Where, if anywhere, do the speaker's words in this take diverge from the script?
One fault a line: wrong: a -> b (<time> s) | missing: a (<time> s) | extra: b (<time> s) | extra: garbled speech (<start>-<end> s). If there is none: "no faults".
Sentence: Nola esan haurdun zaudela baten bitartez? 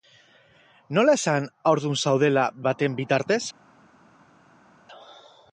no faults